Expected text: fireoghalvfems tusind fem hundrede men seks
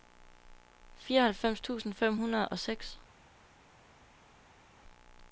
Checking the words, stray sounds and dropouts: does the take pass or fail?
fail